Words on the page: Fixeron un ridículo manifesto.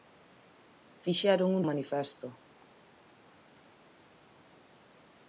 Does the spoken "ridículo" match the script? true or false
false